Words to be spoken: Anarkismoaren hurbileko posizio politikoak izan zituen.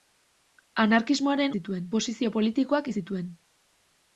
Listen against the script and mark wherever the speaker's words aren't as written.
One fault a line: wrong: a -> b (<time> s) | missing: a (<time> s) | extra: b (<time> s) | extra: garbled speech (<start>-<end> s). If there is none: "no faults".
wrong: hurbileko -> zituen (1.6 s)
missing: izan (2.9 s)